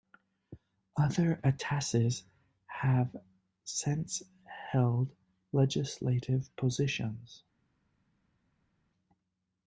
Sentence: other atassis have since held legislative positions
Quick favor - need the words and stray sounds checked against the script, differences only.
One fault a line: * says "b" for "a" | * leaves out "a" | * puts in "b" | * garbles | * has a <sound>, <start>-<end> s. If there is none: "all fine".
all fine